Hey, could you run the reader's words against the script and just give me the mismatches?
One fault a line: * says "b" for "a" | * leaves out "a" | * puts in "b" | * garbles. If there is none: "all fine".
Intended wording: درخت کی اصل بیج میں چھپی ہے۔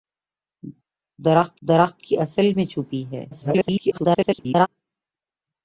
* puts in "درخت"
* leaves out "بیج"
* garbles